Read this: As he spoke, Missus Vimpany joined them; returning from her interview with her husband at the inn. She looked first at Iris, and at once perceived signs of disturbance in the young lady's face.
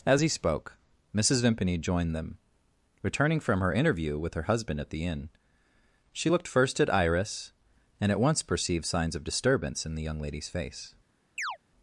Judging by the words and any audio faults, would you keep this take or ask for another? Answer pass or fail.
fail